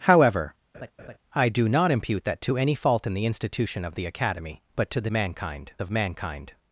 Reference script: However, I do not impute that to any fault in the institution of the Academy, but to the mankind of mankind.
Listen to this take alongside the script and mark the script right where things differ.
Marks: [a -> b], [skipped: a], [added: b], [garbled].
However, I do not impute that to any fault in the institution of the Academy, but to the mankind of mankind.